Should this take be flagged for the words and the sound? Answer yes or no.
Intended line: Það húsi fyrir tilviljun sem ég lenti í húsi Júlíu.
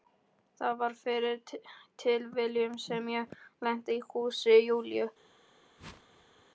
yes